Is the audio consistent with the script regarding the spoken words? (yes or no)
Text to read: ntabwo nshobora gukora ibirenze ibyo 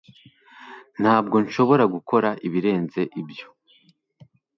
yes